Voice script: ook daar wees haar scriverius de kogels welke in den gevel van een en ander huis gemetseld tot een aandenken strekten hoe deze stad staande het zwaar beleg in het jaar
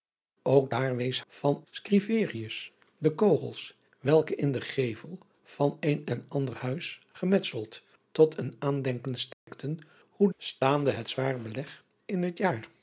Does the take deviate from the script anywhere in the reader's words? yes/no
yes